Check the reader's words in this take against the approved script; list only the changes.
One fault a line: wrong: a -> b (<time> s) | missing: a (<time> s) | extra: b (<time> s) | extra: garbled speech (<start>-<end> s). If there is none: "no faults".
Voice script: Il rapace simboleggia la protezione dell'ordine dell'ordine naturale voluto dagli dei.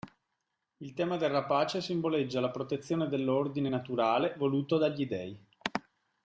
extra: tema del (0.9 s)
missing: dell'ordine (3.7 s)